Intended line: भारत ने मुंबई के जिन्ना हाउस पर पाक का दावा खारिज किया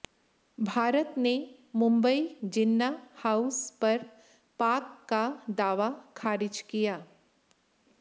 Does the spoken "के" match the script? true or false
false